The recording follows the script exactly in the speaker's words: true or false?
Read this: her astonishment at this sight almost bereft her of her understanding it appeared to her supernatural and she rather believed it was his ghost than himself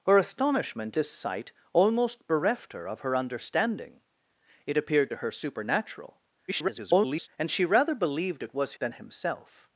false